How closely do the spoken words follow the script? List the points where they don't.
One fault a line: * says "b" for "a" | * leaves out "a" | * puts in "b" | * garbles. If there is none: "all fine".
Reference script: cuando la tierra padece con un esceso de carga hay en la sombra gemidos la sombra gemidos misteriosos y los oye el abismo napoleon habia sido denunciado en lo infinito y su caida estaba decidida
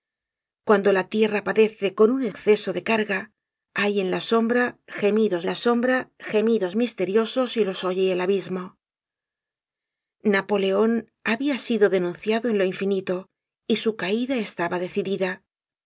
all fine